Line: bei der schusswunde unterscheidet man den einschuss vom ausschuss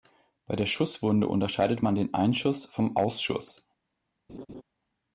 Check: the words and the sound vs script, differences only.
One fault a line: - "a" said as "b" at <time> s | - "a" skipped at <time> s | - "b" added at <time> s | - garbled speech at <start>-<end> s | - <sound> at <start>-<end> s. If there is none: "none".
- laugh at 4.3-4.6 s